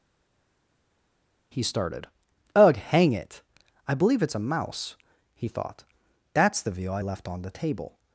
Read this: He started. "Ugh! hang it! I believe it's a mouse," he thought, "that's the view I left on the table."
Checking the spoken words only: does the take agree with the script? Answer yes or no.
yes